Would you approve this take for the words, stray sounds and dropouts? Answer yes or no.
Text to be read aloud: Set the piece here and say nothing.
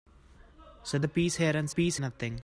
no